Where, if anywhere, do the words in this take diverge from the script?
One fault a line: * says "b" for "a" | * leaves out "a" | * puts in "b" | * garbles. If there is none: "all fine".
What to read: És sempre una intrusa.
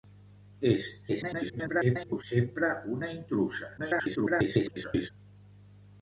* garbles
* garbles